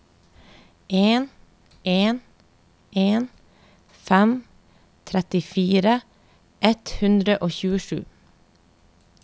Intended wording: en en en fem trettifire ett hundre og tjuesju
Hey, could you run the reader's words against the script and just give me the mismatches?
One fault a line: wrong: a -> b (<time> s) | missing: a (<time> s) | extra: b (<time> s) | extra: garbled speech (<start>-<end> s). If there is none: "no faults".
no faults